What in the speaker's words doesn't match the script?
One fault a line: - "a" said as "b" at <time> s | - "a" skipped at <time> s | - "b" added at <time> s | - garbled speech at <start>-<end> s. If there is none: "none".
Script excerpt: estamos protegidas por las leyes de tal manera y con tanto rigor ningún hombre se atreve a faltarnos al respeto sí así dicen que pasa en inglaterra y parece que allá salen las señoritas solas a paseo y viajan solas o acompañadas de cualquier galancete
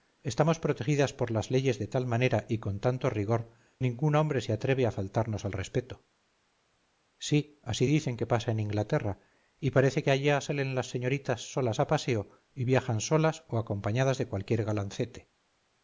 none